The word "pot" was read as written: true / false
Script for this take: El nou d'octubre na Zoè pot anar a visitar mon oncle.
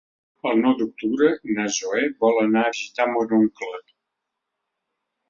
false